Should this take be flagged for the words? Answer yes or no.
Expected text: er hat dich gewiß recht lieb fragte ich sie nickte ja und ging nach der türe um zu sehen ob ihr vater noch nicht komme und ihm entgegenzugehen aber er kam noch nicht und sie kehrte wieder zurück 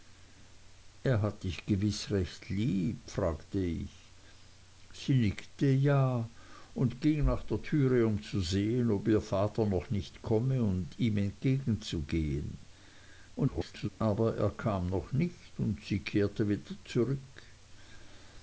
yes